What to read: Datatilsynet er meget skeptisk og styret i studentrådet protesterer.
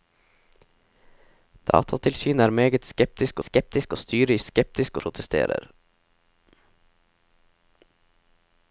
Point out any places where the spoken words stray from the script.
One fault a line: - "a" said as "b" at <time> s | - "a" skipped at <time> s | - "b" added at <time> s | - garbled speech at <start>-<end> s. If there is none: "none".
- "skeptisk" added at 3.4 s
- "studentrådet" said as "skeptisk" at 4.4 s